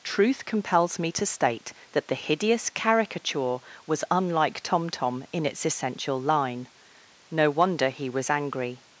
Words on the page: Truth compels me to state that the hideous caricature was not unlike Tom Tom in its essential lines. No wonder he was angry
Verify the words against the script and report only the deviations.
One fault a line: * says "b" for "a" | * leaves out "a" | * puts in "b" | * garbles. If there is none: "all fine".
* leaves out "not"
* says "line" for "lines"